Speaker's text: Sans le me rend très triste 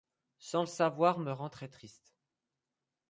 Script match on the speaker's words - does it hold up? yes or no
no